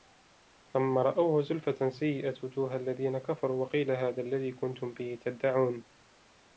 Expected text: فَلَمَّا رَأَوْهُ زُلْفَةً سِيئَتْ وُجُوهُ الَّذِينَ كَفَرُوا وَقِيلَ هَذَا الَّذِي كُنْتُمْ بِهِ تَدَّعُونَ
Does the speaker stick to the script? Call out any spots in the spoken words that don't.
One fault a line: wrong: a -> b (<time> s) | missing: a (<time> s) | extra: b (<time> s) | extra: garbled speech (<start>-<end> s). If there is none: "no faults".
no faults